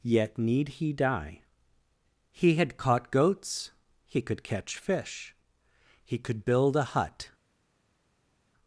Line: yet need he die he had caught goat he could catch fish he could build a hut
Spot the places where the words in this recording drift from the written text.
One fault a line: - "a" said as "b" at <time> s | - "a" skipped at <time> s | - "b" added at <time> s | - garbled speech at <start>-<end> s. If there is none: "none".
- "goat" said as "goats" at 3.1 s